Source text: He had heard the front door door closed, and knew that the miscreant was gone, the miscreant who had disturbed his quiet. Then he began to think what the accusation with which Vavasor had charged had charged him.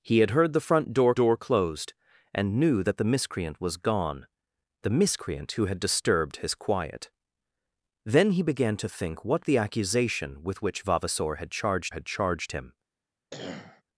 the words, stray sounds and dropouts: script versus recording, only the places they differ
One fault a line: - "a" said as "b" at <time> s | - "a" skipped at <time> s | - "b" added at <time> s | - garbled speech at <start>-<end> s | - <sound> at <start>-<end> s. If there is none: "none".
- cough at 13.3-13.8 s